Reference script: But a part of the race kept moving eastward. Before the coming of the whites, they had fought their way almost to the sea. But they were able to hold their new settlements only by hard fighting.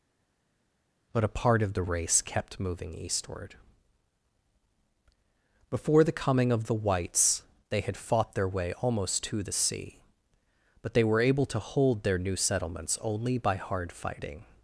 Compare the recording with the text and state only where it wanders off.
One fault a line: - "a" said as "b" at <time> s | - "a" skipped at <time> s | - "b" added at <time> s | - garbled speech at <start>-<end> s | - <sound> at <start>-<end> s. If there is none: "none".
none